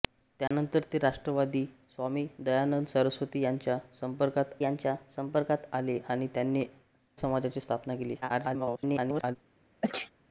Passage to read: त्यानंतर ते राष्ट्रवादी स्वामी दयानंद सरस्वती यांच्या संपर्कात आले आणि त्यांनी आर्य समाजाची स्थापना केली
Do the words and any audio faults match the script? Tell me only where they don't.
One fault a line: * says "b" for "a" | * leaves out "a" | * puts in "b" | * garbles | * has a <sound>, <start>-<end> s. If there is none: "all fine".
* has a dropout, 0.5-0.5 s
* puts in "यांच्या संपर्कात"
* leaves out "आर्य"
* garbles
* has a sneeze, 9.8-10.1 s